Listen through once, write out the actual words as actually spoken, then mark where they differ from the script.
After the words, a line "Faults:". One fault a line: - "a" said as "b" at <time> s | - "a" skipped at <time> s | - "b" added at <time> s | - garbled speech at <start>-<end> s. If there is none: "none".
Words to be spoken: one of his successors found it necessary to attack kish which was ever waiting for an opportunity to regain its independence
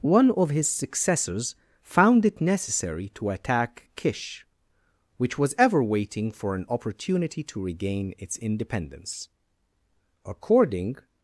one of his successors found it necessary to attack kish which was ever waiting for an opportunity to regain its independence according
Faults:
- "according" added at 10.2 s